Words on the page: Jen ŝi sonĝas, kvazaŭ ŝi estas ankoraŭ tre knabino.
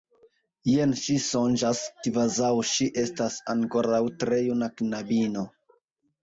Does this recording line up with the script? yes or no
no